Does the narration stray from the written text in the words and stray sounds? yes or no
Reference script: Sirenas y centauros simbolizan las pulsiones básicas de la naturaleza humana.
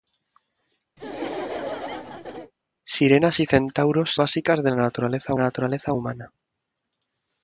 yes